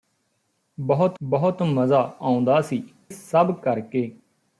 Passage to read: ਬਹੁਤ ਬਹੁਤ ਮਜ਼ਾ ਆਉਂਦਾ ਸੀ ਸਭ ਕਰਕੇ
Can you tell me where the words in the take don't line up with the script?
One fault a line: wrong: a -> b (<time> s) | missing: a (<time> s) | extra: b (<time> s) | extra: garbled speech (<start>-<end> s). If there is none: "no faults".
no faults